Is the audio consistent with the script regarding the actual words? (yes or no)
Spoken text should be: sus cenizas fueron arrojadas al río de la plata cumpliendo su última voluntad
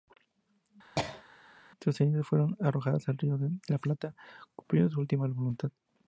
yes